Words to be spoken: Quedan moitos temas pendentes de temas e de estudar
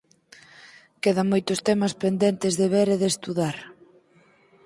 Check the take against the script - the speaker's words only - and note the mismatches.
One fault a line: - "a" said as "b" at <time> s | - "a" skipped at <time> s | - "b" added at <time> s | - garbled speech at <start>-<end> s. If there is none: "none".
- "temas" said as "ver" at 2.7 s